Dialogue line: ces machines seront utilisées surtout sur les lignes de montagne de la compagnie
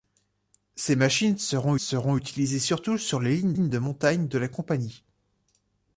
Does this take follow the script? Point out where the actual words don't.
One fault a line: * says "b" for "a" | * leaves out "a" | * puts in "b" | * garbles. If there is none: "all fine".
* puts in "seront"
* puts in "lignes"